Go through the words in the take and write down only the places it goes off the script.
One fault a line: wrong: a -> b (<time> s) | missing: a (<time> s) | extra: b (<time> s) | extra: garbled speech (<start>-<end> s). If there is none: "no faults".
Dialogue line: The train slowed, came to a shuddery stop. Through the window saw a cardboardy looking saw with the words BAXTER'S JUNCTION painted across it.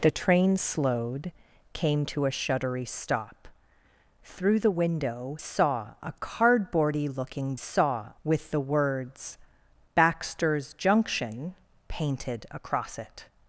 no faults